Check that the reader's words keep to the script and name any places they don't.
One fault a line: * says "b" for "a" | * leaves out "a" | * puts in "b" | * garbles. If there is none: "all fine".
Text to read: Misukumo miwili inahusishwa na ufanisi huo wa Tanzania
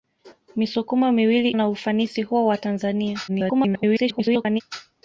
* leaves out "inahusishwa"
* garbles